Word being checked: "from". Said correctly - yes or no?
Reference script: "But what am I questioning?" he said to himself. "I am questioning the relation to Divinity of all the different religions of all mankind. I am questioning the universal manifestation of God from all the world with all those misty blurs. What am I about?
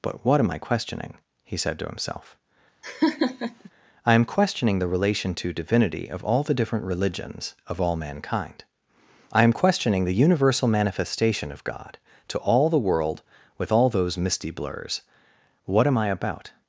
no